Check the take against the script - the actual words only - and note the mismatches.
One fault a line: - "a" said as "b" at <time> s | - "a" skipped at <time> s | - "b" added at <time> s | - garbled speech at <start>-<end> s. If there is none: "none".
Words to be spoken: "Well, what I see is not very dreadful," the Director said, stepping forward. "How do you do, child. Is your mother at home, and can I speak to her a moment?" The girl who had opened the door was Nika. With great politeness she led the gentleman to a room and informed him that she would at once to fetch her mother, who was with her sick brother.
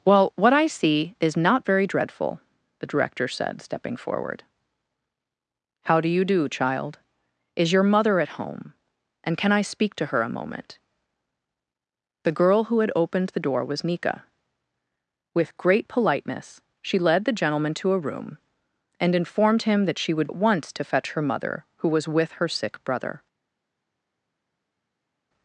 none